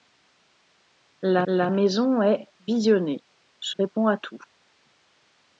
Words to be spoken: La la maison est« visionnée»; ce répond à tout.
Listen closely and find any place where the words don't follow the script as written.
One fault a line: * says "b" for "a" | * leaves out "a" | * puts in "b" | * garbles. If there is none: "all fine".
all fine